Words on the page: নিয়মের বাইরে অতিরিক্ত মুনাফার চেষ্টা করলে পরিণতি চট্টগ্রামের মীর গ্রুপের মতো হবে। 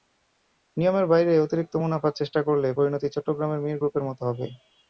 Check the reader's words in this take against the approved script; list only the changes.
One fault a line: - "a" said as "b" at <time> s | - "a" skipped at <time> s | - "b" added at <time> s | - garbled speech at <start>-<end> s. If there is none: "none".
none